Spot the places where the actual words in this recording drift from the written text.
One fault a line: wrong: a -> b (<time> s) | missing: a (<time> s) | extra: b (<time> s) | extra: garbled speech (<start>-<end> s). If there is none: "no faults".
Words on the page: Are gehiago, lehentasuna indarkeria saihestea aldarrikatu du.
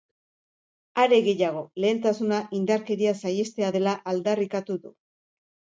extra: dela (3.8 s)